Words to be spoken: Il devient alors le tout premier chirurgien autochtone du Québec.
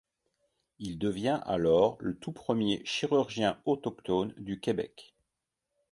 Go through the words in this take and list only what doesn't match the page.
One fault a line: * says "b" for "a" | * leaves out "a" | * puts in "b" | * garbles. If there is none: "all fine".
all fine